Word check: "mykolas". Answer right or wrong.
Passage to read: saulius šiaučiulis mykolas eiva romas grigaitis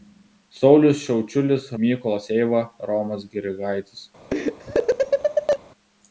right